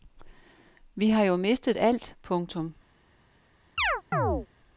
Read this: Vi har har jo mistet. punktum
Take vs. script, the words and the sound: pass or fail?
fail